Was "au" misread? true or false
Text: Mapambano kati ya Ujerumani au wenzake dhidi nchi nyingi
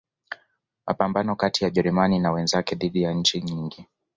true